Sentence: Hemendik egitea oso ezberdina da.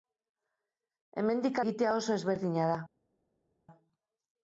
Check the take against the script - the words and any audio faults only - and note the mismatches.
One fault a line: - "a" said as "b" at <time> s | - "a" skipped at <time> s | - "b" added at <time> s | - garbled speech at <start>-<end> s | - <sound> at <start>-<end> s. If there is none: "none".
none